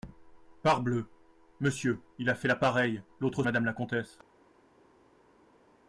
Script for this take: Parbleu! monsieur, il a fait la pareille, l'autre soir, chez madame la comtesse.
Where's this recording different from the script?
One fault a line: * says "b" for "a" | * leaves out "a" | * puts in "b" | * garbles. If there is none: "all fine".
* leaves out "soir chez"